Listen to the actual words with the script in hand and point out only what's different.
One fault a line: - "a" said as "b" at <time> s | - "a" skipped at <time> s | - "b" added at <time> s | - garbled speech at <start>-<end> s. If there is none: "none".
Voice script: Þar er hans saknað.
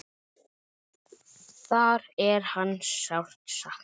- "sárt" added at 3.0 s